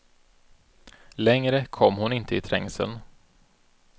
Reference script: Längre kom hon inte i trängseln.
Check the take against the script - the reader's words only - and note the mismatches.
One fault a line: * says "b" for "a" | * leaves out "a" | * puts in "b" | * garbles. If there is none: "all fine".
all fine